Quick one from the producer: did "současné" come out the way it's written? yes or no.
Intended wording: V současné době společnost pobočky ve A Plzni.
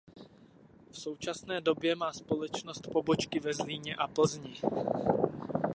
yes